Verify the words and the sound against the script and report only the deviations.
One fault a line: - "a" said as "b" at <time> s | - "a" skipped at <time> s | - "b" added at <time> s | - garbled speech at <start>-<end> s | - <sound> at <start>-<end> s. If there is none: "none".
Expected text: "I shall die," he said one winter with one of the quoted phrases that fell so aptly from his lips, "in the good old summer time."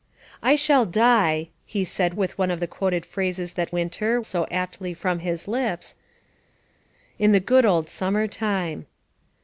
- "one winter" skipped at 2.1 s
- "fell" said as "winter" at 3.7 s